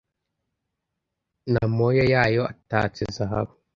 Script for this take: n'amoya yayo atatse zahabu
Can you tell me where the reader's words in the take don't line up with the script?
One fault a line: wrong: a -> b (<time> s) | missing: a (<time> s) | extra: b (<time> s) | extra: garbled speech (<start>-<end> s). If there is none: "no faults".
no faults